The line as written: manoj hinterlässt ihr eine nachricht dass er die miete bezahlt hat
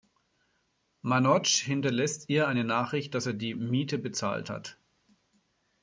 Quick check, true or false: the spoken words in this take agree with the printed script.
true